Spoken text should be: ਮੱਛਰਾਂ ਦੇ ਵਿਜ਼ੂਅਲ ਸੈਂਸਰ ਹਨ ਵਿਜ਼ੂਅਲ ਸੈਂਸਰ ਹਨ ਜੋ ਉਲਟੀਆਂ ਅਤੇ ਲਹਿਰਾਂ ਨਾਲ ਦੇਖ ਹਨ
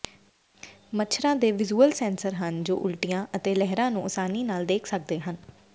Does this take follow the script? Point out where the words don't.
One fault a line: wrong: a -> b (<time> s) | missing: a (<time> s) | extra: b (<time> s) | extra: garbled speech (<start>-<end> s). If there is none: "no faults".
missing: ਵਿਜ਼ੂਅਲ ਸੈਂਸਰ ਹਨ (2.6 s)
extra: ਨੂੰ ਆਸਾਨੀ (3.9 s)
extra: ਸਕਦੇ (4.9 s)